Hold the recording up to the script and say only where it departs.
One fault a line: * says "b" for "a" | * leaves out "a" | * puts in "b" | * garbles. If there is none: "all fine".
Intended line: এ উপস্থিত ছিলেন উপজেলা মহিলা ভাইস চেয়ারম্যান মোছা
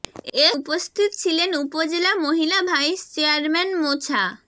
all fine